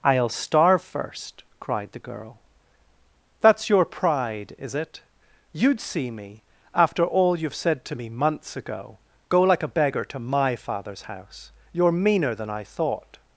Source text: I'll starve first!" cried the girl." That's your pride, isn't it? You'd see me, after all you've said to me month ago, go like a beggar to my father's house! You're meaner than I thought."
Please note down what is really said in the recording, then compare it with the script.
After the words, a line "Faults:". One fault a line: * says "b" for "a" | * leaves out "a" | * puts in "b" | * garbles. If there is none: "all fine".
I'll starve first!" cried the girl." That's your pride, is it? You'd see me, after all you've said to me months ago, go like a beggar to my father's house! You're meaner than I thought."
Faults:
* says "is" for "isn't"
* says "months" for "month"